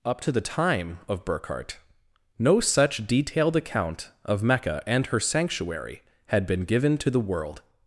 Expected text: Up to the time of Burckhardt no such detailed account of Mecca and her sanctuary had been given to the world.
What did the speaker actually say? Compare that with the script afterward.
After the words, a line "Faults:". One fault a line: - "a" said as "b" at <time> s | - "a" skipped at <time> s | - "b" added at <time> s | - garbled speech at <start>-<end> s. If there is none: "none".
Up to the time of Burckhardt no such detailed account of Mecca and her sanctuary had been given to the world.
Faults:
none